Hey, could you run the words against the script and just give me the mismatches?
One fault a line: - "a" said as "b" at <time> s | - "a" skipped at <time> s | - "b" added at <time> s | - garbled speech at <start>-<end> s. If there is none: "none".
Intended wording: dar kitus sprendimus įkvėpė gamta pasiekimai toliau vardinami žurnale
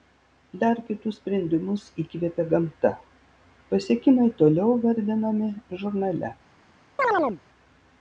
none